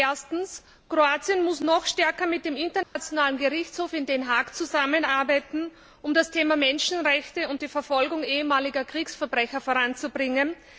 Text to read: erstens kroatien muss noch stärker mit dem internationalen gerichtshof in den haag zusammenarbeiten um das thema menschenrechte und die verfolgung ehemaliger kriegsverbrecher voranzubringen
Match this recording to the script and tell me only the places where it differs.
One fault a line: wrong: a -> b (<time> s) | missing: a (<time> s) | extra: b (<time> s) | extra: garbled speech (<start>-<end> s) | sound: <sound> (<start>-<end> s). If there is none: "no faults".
sound: dropout (2.8-3.0 s)